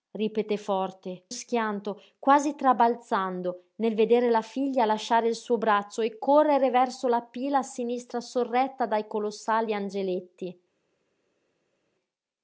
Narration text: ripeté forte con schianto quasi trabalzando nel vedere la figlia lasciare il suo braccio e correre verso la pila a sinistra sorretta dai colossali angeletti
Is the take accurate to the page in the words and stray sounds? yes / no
no